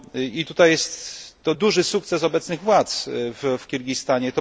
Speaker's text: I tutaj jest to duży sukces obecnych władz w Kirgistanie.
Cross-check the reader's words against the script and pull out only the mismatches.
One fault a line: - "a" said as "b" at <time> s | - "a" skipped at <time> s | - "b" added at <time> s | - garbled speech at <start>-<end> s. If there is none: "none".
none